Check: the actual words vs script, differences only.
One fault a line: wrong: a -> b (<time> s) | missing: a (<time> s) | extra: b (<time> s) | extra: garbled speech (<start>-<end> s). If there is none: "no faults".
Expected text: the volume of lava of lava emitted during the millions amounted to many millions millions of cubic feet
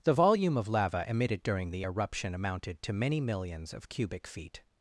missing: of lava (1.0 s)
wrong: millions -> eruption (1.8 s)
missing: millions (3.7 s)